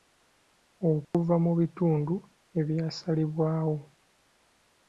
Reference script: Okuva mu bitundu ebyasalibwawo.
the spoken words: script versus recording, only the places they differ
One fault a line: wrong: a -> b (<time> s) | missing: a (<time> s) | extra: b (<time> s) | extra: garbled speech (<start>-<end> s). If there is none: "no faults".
no faults